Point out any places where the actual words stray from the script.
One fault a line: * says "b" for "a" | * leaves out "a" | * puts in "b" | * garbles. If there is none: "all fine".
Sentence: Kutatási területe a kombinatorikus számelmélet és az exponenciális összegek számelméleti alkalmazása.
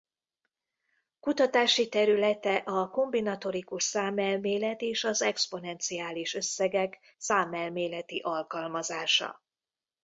all fine